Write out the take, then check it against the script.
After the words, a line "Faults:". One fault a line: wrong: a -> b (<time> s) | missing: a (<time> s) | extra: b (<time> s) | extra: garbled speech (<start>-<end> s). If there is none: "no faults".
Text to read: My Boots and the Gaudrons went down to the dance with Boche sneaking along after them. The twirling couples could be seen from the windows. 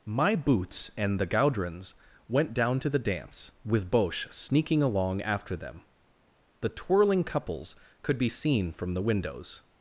My Boots and the Gaudrons went down to the dance with Boche sneaking along after them. The twirling couples could be seen from the windows.
Faults:
no faults